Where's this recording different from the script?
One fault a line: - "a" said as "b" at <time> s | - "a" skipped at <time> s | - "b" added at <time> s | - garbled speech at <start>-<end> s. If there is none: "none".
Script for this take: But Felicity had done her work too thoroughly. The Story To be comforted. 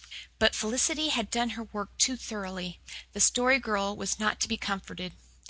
- "Girl was not" added at 3.6 s